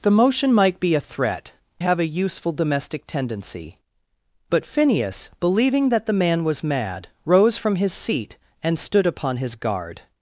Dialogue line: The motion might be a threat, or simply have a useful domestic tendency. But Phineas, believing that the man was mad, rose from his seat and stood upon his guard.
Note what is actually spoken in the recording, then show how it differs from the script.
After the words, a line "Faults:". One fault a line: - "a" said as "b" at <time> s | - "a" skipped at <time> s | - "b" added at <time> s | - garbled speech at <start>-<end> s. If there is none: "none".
The motion might be a threat, have a useful domestic tendency. But Phineas, believing that the man was mad, rose from his seat and stood upon his guard.
Faults:
- "or simply" skipped at 1.5 s